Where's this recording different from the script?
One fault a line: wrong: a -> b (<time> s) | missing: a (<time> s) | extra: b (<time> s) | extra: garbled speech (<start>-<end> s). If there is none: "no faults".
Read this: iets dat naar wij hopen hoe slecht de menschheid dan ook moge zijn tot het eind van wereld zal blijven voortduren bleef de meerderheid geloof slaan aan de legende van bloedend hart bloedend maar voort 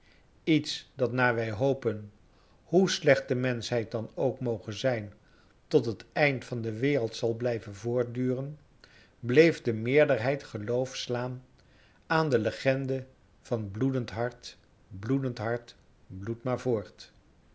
extra: de (6.6 s)
extra: hart bloed (15.4 s)